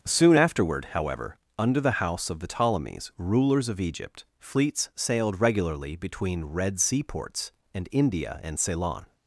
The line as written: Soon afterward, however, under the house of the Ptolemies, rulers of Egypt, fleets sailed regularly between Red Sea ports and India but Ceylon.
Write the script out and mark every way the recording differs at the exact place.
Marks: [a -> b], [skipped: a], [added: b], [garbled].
Soon afterward, however, under the house of the Ptolemies, rulers of Egypt, fleets sailed regularly between Red Sea ports and India [but -> and] Ceylon.